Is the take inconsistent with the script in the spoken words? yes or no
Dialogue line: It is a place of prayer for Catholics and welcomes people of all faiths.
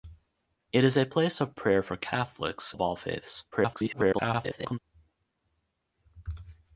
yes